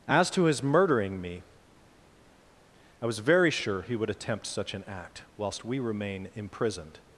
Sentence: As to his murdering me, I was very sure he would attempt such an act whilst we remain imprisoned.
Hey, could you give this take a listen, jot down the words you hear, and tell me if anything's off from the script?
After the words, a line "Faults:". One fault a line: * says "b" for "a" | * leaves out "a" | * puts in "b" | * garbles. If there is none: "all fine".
As to his murdering me, I was very sure he would attempt such an act whilst we remain imprisoned.
Faults:
all fine